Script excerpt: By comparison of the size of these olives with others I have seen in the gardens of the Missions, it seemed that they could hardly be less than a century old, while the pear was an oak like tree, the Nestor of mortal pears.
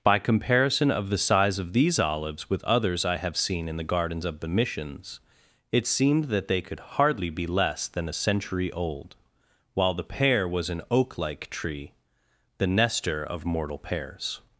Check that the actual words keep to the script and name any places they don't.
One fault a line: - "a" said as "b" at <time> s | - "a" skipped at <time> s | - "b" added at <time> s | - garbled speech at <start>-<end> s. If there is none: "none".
none